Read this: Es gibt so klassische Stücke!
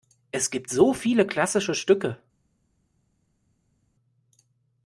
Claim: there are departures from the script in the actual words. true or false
true